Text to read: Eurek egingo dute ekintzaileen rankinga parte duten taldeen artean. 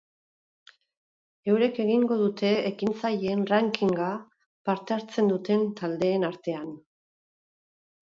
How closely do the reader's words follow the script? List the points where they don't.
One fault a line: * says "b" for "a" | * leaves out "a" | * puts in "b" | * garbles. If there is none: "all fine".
* puts in "hartzen"